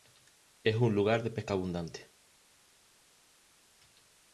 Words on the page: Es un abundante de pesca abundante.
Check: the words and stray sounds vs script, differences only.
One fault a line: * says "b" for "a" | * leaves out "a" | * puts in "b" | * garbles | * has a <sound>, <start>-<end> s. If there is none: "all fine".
* says "lugar" for "abundante"